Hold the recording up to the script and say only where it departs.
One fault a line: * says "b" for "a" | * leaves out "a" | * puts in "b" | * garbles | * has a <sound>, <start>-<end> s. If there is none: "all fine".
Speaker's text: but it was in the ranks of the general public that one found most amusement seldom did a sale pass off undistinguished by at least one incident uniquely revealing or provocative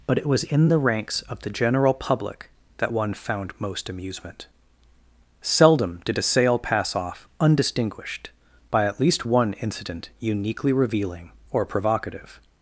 all fine